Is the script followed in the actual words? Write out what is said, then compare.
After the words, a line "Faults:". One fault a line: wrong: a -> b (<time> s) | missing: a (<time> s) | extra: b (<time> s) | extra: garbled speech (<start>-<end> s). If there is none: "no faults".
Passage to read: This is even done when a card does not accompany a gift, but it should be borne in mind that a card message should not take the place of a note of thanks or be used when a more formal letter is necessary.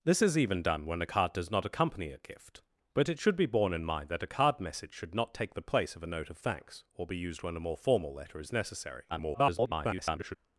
This is even done when a card does not accompany a gift, but it should be borne in mind that a card message should not take the place of a note of thanks or be used when a more formal letter is necessary. [garbled]
Faults:
extra: garbled speech (9.1-10.4 s)